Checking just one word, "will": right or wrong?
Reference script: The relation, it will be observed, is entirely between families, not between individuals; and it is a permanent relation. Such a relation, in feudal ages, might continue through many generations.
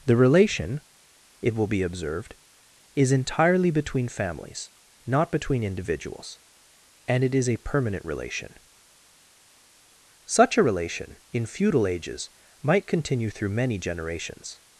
right